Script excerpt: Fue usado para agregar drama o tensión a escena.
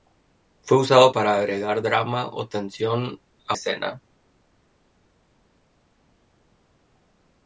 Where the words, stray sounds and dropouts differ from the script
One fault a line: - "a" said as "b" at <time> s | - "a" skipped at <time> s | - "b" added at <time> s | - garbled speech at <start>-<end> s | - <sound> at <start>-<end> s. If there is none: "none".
none